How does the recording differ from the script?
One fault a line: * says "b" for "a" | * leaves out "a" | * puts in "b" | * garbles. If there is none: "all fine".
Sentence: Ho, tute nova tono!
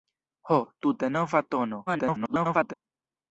* garbles